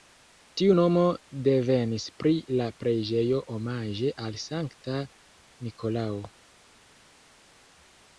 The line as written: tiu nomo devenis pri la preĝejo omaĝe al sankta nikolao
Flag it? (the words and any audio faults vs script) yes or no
no